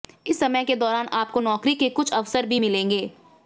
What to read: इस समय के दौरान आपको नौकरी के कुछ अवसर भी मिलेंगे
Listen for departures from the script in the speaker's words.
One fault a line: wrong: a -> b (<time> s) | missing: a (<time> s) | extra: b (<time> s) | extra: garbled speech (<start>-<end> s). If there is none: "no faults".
no faults